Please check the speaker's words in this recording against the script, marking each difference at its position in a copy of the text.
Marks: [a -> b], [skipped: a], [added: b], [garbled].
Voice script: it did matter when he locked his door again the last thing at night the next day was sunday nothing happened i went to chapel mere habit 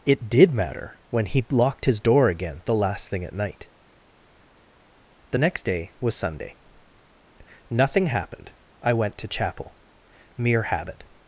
it did matter when he locked his door again the last thing at night the next day was sunday nothing happened i went to chapel mere habit